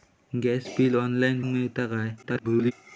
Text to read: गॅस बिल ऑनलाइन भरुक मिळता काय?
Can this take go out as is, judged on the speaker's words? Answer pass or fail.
fail